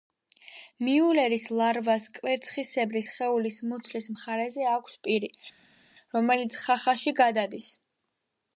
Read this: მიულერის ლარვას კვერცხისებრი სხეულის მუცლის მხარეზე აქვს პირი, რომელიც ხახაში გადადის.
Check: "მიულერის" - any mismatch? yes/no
no